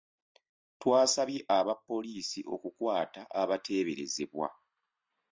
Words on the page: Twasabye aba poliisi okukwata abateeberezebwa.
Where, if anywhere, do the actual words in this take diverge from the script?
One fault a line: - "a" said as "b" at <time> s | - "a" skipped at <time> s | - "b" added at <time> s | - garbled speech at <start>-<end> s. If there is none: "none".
none